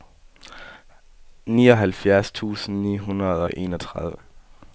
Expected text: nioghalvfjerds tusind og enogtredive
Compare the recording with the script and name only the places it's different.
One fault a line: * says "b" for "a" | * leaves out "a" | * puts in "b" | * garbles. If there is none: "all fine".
* puts in "ni hundrede"